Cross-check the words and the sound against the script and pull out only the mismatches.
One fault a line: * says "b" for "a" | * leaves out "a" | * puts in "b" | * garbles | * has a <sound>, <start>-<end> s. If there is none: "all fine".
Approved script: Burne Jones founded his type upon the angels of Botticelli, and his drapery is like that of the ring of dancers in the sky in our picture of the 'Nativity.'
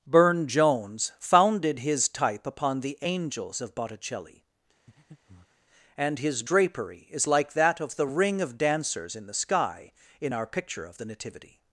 * has a breath, 4.9-5.7 s